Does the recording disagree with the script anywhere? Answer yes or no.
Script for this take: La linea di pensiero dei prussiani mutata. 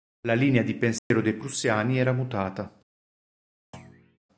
yes